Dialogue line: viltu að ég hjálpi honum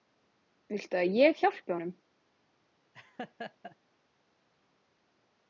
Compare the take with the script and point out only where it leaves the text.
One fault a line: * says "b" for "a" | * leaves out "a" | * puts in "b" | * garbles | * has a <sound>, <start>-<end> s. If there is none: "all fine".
* has a laugh, 2.9-3.8 s